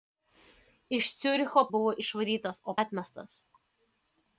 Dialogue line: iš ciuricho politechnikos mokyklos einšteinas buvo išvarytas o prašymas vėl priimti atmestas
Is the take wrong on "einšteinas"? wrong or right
wrong